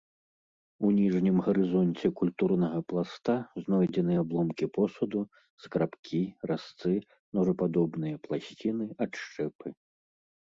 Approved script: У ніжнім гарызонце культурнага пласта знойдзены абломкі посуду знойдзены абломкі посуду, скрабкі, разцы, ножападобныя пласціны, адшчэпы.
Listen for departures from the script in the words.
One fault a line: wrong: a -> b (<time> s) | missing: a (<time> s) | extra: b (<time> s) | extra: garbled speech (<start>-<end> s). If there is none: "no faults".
missing: знойдзены абломкі посуду (5.2 s)